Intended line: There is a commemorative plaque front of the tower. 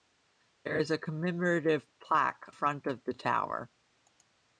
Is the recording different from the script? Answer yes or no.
no